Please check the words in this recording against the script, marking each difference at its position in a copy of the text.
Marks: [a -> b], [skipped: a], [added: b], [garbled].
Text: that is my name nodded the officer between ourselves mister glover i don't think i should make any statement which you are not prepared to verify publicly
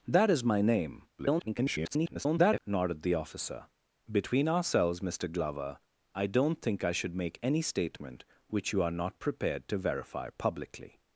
that is my name [garbled] nodded the officer between ourselves mister glover i don't think i should make any statement which you are not prepared to verify publicly